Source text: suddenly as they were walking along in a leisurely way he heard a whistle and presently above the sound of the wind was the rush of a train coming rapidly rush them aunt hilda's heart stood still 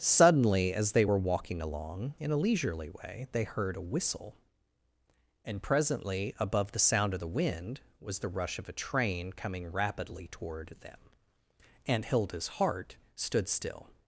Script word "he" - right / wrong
wrong